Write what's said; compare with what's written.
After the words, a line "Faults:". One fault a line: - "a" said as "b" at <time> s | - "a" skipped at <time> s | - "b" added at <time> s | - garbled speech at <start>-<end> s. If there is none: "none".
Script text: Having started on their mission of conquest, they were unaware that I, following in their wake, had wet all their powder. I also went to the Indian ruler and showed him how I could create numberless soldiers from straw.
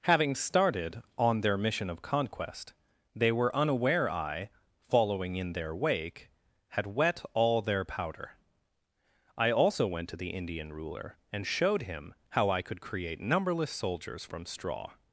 Having started on their mission of conquest, they were unaware I, following in their wake, had wet all their powder. I also went to the Indian ruler and showed him how I could create numberless soldiers from straw.
Faults:
- "that" skipped at 4.1 s